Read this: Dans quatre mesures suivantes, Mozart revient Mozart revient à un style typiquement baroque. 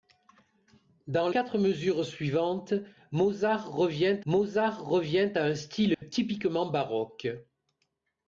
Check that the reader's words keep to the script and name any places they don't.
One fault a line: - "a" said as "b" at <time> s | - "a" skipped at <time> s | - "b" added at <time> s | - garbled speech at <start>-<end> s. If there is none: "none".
none